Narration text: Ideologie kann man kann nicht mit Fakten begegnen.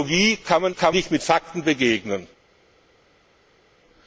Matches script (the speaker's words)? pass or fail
pass